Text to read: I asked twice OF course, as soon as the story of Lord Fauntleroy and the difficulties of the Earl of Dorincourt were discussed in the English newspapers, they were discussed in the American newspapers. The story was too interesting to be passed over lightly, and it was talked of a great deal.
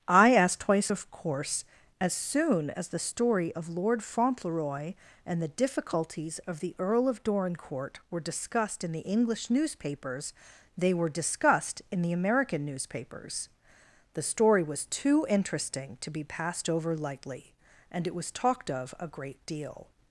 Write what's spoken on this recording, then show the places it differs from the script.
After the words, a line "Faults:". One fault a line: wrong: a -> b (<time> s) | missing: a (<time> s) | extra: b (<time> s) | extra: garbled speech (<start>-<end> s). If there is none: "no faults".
I asked twice OF course, as soon as the story of Lord Fauntleroy and the difficulties of the Earl of Dorincourt were discussed in the English newspapers, they were discussed in the American newspapers. The story was too interesting to be passed over lightly, and it was talked of a great deal.
Faults:
no faults